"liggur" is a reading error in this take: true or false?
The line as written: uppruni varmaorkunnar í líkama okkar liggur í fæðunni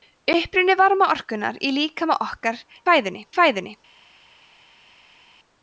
true